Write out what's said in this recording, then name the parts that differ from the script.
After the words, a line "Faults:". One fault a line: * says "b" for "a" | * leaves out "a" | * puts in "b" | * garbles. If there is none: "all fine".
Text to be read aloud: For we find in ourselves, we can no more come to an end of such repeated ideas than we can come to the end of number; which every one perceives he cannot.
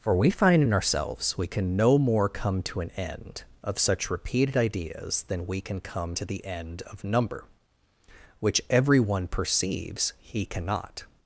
For we find in ourselves, we can no more come to an end of such repeated ideas than we can come to the end of number; which every one perceives he cannot.
Faults:
all fine